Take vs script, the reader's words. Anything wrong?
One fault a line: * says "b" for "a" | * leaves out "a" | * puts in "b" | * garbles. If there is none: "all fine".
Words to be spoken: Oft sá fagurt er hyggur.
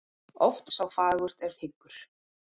all fine